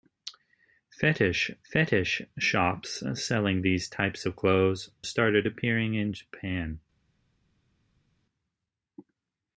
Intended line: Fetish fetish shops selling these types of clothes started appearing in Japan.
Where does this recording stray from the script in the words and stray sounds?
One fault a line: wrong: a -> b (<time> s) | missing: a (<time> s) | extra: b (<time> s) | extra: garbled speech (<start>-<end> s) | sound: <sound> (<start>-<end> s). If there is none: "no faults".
no faults